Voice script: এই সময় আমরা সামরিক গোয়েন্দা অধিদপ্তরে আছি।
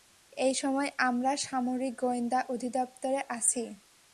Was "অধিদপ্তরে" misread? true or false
false